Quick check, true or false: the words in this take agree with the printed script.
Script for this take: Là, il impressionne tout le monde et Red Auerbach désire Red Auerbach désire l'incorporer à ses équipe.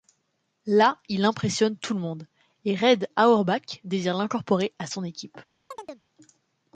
false